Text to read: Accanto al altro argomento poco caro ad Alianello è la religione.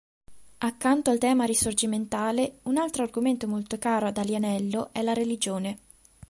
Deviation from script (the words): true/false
true